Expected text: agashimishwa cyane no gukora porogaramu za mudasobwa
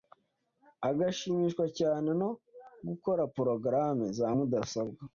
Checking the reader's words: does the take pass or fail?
pass